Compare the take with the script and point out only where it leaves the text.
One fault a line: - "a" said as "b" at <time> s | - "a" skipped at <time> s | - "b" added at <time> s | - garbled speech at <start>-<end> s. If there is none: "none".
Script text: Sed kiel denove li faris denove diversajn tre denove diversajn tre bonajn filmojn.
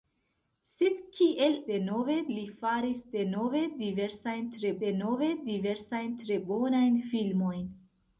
none